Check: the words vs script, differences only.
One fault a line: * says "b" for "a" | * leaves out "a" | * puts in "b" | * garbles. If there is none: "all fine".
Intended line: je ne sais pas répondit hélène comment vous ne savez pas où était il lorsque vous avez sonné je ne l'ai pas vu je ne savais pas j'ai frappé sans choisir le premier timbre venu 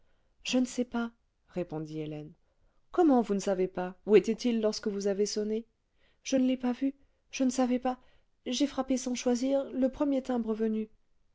all fine